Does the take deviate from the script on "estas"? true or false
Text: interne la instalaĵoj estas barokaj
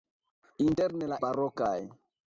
true